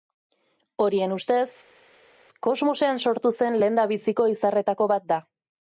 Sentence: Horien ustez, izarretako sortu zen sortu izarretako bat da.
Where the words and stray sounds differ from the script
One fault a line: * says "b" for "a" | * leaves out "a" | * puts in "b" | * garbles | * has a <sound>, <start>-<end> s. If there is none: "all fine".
* says "kosmosean" for "izarretako"
* says "lehendabiziko" for "sortu"